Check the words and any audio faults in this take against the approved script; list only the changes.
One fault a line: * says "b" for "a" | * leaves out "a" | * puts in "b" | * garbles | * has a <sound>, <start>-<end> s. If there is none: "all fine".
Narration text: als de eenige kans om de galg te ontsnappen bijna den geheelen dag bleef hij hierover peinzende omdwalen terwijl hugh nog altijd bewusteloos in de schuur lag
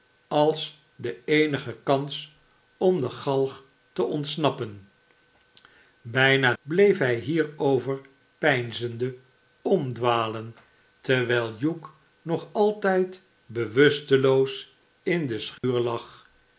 * leaves out "den geheelen dag"
* has a dropout, 15.6-15.6 s